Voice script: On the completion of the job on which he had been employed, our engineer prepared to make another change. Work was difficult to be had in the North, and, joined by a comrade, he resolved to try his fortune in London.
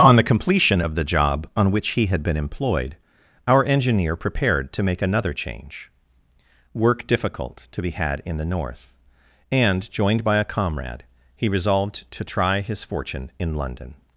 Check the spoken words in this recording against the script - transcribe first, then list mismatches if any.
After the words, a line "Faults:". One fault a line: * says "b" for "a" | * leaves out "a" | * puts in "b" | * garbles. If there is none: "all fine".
On the completion of the job on which he had been employed, our engineer prepared to make another change. Work difficult to be had in the North, and, joined by a comrade, he resolved to try his fortune in London.
Faults:
* leaves out "was"